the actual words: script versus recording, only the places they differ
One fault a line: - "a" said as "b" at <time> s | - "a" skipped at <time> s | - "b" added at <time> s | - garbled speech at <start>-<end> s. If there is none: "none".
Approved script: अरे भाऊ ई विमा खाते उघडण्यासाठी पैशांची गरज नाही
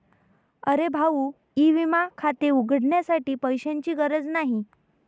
none